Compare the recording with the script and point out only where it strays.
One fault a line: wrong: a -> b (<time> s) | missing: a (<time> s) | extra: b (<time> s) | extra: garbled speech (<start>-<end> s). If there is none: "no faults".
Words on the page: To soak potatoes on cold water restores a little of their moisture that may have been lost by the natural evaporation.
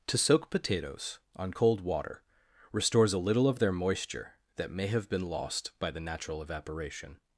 no faults